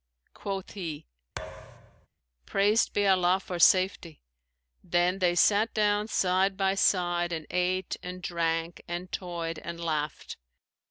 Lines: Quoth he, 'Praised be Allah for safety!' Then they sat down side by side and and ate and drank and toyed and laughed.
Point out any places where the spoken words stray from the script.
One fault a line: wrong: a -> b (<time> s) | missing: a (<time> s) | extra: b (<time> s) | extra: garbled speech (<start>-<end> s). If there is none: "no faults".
missing: and (7.4 s)